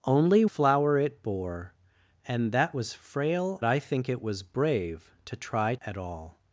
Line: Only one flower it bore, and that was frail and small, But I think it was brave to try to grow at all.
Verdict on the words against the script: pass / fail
fail